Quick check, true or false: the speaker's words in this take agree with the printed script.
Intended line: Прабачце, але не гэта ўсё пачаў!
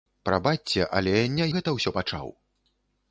true